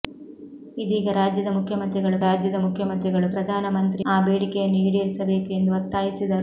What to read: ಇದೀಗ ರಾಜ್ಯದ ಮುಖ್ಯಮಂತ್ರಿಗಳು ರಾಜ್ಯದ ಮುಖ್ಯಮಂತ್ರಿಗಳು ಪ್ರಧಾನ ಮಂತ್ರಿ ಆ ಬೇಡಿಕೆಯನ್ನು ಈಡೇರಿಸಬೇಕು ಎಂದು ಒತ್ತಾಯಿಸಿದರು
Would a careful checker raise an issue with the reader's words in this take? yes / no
no